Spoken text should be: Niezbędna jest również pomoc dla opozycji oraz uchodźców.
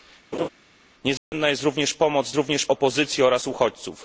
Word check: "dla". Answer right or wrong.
wrong